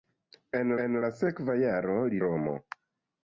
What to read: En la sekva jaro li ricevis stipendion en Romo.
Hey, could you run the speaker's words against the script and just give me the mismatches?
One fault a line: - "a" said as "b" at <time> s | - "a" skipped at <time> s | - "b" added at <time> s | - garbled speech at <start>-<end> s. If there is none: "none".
- "en" added at 0.8 s
- "ricevis stipendion en" skipped at 2.2 s